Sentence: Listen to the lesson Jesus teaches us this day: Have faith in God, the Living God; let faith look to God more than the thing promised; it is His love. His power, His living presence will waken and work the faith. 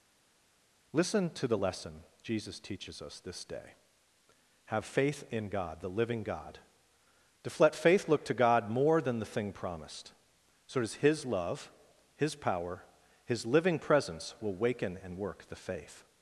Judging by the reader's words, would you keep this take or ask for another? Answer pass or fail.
fail